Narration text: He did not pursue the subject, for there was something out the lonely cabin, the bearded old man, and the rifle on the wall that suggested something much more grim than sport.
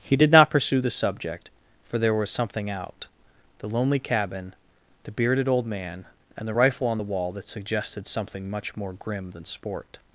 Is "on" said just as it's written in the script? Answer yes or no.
yes